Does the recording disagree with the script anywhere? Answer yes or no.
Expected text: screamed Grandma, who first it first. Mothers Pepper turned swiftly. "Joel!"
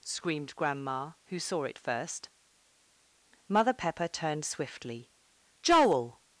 yes